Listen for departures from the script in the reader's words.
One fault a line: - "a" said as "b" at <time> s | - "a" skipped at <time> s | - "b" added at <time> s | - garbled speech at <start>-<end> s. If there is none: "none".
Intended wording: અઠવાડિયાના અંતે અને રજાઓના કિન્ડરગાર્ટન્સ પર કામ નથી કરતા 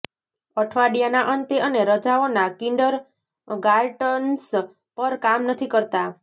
none